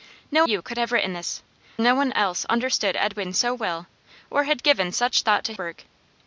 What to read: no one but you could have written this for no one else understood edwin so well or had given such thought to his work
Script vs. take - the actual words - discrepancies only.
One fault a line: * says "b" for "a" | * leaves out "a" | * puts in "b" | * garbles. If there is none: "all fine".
* leaves out "one but"
* leaves out "for"
* leaves out "his"